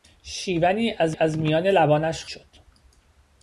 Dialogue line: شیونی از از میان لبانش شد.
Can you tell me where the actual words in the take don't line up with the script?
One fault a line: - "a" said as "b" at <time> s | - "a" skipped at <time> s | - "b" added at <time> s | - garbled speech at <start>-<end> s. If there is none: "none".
none